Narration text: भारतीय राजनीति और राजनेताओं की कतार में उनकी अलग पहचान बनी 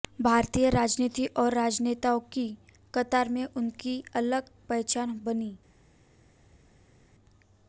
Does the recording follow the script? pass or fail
pass